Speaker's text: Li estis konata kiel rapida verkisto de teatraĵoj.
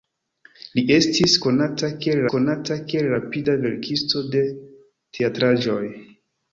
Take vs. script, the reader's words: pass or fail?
fail